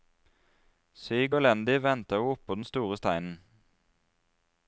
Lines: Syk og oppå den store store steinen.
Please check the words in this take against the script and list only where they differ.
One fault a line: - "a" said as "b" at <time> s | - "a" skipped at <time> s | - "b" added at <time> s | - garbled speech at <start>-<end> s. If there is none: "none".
- "elendig ventet hun" added at 1.4 s
- "store" skipped at 3.0 s